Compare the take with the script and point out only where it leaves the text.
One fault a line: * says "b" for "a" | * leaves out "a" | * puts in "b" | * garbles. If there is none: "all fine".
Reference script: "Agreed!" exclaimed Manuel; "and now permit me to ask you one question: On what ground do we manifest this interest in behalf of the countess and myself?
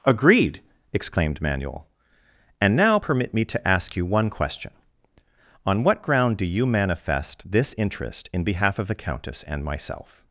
* says "you" for "we"